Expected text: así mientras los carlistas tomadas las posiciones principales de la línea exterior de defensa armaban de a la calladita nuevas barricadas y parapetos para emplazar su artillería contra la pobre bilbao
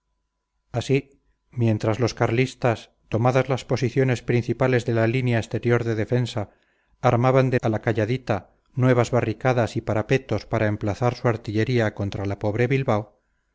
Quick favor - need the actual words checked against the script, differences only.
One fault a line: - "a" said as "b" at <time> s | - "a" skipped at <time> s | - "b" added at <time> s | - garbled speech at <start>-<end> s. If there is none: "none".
none